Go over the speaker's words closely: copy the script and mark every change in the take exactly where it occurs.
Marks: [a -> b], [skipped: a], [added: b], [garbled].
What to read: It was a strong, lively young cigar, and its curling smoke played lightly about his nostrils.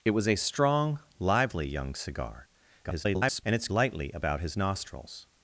It was a strong, lively young cigar, [garbled] and its [skipped: curling smoke played] lightly about his nostrils.